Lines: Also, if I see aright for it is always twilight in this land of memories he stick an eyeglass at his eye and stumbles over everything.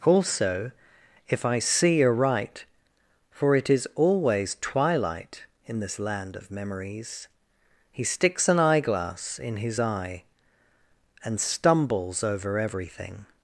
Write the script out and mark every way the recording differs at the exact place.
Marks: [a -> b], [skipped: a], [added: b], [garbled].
Also, if I see aright for it is always twilight in this land of memories he [stick -> sticks] an eyeglass [at -> in] his eye and stumbles over everything.